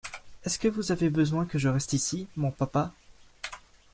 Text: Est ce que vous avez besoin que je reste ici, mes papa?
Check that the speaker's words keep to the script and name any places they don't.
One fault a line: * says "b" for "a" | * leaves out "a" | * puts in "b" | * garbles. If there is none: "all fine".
* says "mon" for "mes"